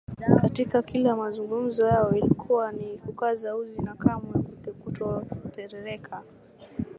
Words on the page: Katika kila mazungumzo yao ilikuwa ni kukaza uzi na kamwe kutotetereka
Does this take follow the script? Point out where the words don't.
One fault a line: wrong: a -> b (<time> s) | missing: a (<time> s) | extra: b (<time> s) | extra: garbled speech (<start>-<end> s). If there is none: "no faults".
no faults